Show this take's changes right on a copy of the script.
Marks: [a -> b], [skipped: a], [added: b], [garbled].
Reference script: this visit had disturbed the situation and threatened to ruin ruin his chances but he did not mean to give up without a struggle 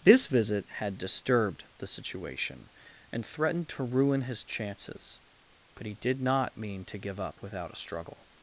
this visit had disturbed the situation and threatened to ruin [skipped: ruin] his chances but he did not mean to give up without a struggle